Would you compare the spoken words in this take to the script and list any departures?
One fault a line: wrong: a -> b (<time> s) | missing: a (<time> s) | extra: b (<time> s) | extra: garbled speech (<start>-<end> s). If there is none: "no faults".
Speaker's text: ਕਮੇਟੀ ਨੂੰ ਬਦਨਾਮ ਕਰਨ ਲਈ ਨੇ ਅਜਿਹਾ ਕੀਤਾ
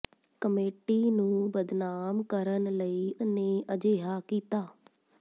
no faults